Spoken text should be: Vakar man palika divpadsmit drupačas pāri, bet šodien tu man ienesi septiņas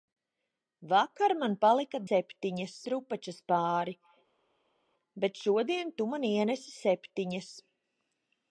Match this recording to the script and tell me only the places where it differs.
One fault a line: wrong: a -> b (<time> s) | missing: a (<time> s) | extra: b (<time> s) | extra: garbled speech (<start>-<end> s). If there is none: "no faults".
wrong: divpadsmit -> septiņas (2.1 s)